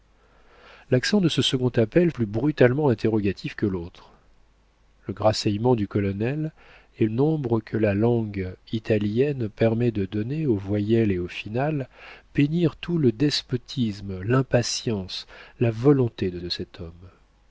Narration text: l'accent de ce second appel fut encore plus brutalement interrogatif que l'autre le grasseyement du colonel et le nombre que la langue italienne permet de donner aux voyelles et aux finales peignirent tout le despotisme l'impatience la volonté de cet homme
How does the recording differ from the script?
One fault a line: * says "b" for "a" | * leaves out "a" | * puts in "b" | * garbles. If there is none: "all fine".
* leaves out "fut encore"
* leaves out "le"
* puts in "de"